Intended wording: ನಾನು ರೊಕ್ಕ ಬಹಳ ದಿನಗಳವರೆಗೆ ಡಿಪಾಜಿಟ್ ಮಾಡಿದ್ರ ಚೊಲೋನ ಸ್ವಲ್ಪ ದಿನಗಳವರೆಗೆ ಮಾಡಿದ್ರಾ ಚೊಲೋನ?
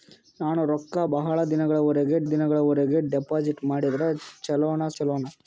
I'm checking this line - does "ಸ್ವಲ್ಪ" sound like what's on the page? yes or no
no